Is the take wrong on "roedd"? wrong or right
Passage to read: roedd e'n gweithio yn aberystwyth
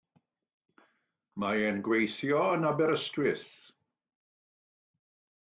wrong